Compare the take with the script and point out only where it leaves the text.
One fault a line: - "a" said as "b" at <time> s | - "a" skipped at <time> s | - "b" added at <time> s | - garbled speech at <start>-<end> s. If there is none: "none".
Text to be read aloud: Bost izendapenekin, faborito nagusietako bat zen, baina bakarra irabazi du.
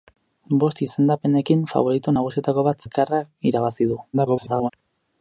- "zen baina" skipped at 2.9 s
- garbled speech at 4.1-4.7 s